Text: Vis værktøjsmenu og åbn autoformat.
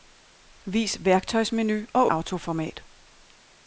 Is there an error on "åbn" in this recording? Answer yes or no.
yes